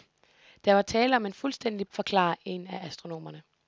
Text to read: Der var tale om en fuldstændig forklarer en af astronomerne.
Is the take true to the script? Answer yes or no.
yes